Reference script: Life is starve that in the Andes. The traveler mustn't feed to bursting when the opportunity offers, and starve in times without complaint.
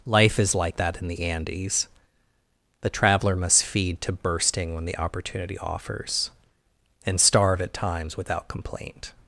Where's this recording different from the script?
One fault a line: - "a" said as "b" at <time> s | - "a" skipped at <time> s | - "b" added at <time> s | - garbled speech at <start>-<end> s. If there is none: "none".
- "starve" said as "like" at 0.6 s
- "mustn't" said as "must" at 3.3 s
- "in" said as "at" at 7.6 s